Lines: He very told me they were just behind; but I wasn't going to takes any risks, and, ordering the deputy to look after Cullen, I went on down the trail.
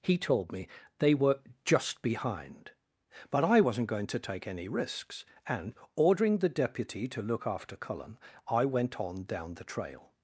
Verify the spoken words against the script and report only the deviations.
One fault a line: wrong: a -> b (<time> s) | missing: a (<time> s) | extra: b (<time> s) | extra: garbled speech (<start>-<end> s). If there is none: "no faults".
missing: very (0.2 s)
wrong: takes -> take (4.2 s)